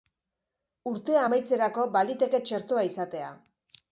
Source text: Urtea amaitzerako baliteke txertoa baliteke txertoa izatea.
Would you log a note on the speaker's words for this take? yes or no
yes